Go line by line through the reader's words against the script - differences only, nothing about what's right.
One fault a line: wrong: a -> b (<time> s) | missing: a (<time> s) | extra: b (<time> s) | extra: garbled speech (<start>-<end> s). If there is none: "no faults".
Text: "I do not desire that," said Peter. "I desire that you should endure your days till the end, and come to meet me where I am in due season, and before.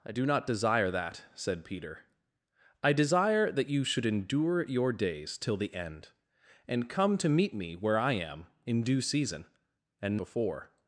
no faults